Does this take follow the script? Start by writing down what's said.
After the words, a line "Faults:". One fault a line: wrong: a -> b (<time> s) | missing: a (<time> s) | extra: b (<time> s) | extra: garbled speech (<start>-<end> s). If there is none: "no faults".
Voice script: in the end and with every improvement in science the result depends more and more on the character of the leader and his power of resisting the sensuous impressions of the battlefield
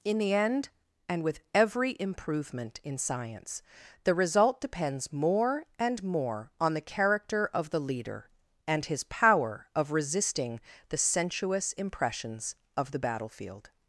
in the end and with every improvement in science the result depends more and more on the character of the leader and his power of resisting the sensuous impressions of the battlefield
Faults:
no faults